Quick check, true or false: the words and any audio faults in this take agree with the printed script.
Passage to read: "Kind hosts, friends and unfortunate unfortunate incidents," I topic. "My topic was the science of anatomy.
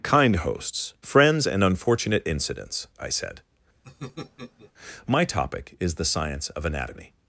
false